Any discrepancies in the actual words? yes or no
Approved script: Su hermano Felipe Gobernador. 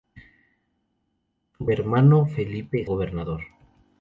no